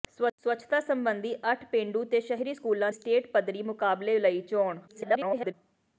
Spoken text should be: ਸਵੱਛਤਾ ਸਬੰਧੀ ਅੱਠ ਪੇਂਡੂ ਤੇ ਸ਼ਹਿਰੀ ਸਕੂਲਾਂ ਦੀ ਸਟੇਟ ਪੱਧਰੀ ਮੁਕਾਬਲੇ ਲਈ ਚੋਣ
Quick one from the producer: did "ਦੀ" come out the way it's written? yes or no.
no